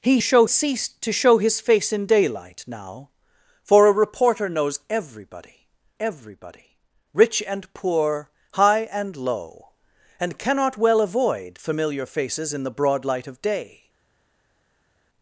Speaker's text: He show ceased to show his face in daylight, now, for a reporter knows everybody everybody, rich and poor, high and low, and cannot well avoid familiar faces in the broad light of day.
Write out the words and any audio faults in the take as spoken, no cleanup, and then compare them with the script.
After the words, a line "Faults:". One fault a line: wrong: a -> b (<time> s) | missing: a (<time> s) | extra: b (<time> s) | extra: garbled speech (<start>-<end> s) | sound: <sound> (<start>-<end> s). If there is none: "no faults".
He show ceased to show his face in daylight, now, for a reporter knows everybody everybody, rich and poor, high and low, and cannot well avoid familiar faces in the broad light of day.
Faults:
no faults